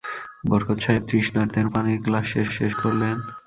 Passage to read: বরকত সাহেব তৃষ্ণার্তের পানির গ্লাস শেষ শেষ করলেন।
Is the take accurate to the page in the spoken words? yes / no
yes